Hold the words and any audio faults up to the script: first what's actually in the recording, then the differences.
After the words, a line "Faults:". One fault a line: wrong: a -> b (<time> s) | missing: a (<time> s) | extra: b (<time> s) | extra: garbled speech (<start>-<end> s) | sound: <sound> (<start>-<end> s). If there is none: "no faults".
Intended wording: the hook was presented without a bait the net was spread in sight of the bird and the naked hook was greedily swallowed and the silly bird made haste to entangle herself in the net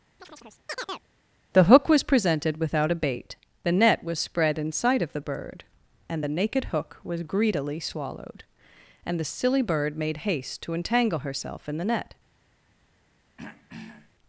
the hook was presented without a bait the net was spread in sight of the bird and the naked hook was greedily swallowed and the silly bird made haste to entangle herself in the net
Faults:
sound: chirp (0.2-1.1 s)
sound: throat clearing (13.4-14.1 s)